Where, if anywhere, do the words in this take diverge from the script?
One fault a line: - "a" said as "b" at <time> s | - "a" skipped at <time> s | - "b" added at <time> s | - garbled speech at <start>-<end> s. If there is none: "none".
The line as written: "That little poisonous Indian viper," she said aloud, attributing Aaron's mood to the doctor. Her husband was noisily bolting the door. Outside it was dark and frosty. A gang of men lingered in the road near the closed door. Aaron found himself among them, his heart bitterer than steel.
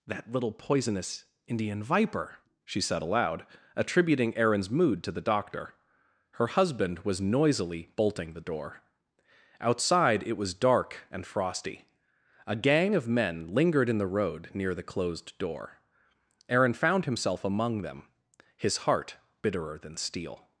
none